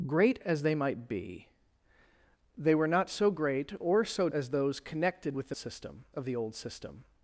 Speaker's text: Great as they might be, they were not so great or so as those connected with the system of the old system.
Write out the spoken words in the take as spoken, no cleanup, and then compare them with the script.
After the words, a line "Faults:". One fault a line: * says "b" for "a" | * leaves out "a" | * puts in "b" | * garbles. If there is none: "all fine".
Great as they might be, they were not so great or so as those connected with the system of the old system.
Faults:
all fine